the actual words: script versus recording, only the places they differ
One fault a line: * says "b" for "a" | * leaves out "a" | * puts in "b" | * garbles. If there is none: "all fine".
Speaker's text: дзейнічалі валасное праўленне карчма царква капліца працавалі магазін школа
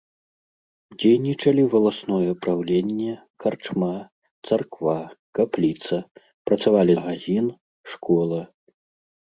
all fine